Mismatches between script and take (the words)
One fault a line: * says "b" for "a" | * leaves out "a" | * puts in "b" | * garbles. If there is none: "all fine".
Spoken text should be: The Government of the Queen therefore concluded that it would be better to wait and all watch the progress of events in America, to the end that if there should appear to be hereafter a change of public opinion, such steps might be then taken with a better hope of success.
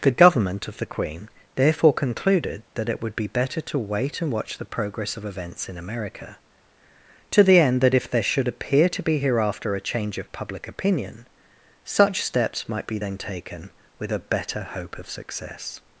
* leaves out "all"